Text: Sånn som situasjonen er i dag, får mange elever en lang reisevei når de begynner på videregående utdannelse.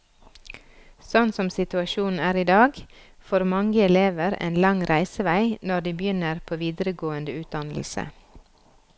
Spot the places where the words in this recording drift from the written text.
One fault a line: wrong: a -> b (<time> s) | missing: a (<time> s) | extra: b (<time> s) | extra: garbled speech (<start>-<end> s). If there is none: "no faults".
no faults